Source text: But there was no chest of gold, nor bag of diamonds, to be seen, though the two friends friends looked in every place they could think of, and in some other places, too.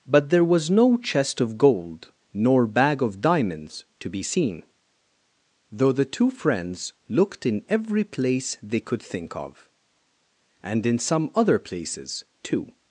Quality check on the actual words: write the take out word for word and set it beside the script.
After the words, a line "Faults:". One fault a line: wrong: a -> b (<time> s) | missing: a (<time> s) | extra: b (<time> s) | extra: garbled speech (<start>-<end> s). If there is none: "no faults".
But there was no chest of gold, nor bag of diamonds, to be seen, though the two friends looked in every place they could think of, and in some other places, too.
Faults:
missing: friends (6.9 s)